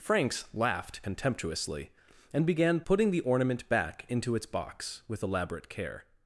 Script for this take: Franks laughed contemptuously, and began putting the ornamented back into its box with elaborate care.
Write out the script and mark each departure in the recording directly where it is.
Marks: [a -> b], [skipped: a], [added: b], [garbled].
Franks laughed contemptuously, and began putting the [ornamented -> ornament] back into its box with elaborate care.